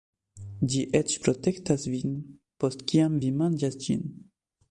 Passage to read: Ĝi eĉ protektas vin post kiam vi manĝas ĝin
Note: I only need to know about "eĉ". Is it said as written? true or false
true